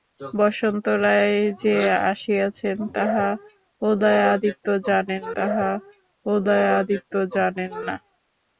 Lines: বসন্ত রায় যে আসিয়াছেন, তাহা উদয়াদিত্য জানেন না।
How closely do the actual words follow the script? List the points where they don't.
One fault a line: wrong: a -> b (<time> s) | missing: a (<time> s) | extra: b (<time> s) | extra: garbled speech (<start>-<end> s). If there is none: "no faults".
extra: তাহা উদয়াদিত্য জানেন (5.4 s)